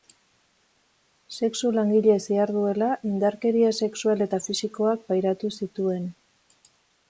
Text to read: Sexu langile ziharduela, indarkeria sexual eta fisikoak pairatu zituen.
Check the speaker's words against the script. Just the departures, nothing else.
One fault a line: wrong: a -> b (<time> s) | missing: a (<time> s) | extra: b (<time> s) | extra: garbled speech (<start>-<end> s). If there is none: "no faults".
no faults